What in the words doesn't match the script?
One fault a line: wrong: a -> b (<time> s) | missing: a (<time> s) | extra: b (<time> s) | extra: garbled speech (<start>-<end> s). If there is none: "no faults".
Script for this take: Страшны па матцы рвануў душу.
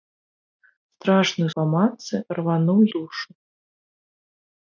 no faults